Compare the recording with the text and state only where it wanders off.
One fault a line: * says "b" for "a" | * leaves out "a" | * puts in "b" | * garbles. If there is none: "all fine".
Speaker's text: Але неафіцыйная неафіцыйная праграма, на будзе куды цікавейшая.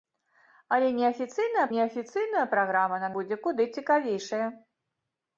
all fine